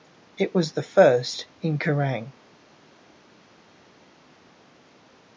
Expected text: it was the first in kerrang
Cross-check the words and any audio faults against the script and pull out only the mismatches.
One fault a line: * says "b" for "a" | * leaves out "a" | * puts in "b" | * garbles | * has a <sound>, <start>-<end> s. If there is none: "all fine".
all fine